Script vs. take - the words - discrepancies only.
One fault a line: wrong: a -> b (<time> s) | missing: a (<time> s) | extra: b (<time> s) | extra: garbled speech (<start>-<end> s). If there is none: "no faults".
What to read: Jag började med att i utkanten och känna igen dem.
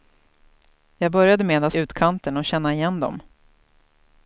no faults